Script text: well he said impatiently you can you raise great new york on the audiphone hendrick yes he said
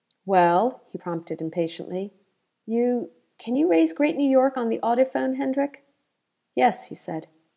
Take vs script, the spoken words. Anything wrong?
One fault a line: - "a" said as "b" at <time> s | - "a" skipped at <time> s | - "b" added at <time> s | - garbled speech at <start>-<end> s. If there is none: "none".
- "said" said as "prompted" at 0.9 s